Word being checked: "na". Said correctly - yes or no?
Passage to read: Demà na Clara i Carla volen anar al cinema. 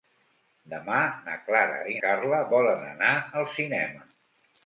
yes